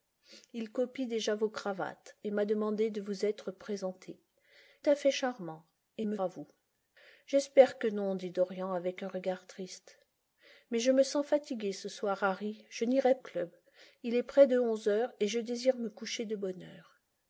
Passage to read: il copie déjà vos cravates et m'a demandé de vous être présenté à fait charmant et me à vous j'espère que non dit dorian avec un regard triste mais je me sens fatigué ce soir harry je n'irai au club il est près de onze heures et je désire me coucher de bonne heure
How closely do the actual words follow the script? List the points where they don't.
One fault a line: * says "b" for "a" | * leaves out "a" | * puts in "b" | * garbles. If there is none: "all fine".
all fine